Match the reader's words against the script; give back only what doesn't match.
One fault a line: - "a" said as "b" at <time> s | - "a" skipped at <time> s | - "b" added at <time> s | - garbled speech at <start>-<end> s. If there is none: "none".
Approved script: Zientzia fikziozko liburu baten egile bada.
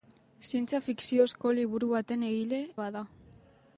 none